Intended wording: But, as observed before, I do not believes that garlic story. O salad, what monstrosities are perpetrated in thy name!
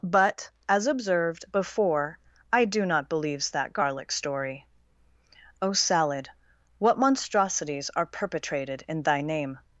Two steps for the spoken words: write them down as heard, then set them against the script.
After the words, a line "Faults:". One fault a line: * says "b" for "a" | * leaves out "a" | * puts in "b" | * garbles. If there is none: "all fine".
But, as observed before, I do not believes that garlic story. O salad, what monstrosities are perpetrated in thy name!
Faults:
all fine